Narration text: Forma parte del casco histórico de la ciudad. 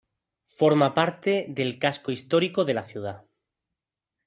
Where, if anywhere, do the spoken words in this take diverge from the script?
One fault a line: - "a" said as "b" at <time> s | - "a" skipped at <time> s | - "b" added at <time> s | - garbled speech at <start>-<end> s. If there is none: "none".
none